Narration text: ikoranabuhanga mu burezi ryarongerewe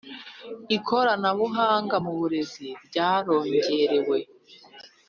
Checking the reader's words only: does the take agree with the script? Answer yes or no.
yes